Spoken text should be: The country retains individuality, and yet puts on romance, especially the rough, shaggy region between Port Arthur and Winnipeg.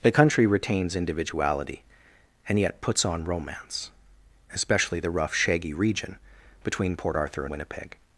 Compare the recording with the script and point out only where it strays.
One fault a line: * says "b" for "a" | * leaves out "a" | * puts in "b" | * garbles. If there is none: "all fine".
* leaves out "and"